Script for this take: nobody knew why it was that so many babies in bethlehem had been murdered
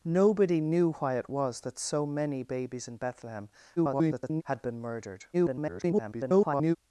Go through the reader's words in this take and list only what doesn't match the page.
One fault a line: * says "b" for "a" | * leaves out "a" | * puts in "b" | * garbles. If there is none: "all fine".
* garbles
* garbles